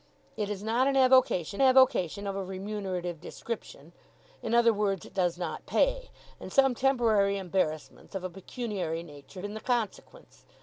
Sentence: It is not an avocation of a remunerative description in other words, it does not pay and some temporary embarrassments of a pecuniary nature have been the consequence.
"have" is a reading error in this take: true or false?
true